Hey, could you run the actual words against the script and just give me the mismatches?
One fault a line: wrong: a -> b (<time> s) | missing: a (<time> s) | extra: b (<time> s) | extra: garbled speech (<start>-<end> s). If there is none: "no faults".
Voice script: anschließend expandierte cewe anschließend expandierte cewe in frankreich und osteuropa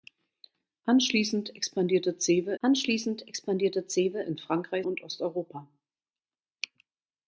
no faults